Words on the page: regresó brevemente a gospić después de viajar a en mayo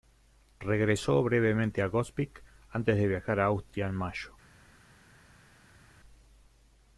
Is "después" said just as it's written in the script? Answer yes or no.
no